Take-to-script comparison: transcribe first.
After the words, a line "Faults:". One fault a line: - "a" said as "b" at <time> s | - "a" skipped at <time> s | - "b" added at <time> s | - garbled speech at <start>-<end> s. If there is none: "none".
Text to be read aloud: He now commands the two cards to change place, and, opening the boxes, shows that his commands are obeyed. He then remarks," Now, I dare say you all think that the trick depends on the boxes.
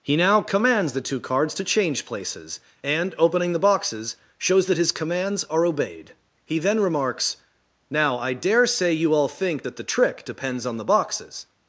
He now commands the two cards to change places, and, opening the boxes, shows that his commands are obeyed. He then remarks," Now, I dare say you all think that the trick depends on the boxes.
Faults:
- "place" said as "places" at 2.1 s